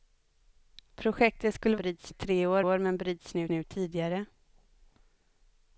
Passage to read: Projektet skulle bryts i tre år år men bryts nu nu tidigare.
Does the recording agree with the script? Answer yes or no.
yes